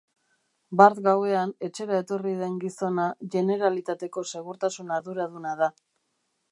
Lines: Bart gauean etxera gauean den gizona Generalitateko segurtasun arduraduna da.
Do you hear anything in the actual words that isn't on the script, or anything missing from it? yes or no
yes